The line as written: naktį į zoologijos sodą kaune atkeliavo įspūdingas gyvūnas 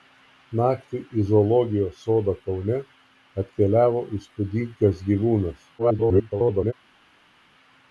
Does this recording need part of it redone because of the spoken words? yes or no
yes